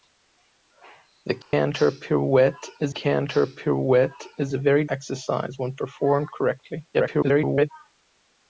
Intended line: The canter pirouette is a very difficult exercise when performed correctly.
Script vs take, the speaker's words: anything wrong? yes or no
yes